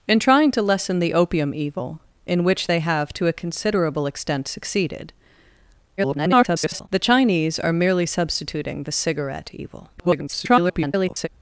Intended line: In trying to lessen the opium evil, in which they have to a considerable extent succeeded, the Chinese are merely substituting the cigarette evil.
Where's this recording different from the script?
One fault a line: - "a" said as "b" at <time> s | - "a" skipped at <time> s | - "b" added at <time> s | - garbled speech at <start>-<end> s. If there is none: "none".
- garbled speech at 6.0-6.9 s
- garbled speech at 10.0-11.3 s